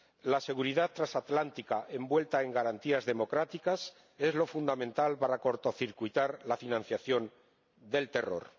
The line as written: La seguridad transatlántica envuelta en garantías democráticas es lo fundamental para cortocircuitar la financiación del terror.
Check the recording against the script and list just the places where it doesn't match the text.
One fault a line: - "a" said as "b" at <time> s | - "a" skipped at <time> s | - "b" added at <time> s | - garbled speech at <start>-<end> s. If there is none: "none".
none